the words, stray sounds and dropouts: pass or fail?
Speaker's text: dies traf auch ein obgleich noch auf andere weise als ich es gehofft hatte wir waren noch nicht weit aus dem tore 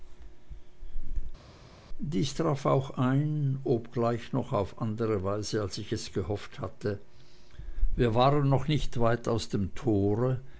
pass